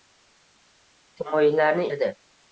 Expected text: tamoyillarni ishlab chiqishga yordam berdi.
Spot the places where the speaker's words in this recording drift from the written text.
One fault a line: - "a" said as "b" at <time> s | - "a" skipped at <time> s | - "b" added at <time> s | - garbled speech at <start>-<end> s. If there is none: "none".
- "ishlab chiqishga yordam" skipped at 1.9 s